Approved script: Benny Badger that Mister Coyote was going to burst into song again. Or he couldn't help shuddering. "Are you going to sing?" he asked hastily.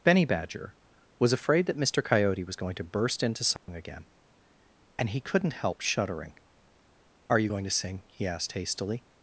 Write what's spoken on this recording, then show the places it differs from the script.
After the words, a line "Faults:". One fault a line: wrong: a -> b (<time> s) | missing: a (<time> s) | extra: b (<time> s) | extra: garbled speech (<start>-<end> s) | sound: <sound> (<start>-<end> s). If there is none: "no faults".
Benny Badger was afraid that Mister Coyote was going to burst into song again. And he couldn't help shuddering. "Are you going to sing?" he asked hastily.
Faults:
extra: was afraid (1.2 s)
sound: dropout (3.6-3.7 s)
wrong: Or -> And (5.0 s)